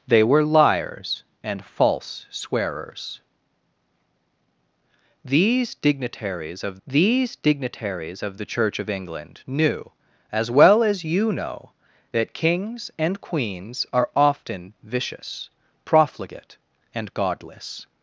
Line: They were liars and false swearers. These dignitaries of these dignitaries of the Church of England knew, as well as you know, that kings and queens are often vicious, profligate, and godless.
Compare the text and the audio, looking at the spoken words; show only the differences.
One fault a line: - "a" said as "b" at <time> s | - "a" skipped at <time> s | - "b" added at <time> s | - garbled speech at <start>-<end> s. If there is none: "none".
none